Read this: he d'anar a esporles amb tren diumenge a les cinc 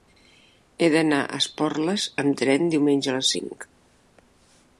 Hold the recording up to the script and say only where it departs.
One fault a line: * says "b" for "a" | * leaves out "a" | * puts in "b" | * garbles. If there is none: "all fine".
all fine